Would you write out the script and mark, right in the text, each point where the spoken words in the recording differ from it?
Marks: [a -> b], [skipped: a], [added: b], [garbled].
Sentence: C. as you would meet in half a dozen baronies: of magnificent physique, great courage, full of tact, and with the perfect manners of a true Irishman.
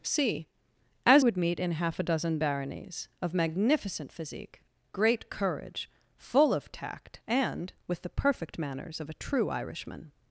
C. as [skipped: you] would meet in half a dozen baronies: of magnificent physique, great courage, full of tact, and with the perfect manners of a true Irishman.